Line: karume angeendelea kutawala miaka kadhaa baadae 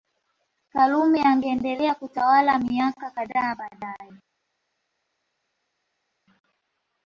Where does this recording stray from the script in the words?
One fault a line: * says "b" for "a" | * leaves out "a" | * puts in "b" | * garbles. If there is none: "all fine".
all fine